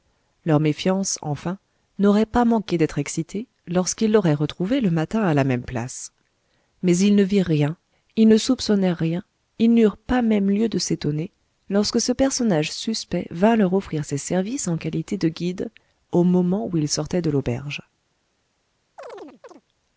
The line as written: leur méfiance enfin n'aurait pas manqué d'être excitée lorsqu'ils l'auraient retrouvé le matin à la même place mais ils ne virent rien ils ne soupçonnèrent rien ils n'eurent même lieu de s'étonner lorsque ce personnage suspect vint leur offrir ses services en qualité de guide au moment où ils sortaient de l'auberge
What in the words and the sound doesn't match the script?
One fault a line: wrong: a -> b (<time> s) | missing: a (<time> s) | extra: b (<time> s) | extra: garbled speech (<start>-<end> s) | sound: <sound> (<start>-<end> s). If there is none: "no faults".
extra: pas (10.0 s)
sound: chirp (19.0-19.6 s)